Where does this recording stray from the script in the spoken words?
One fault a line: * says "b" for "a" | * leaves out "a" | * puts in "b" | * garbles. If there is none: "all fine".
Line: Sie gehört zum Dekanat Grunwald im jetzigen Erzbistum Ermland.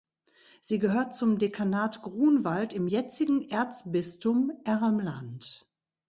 all fine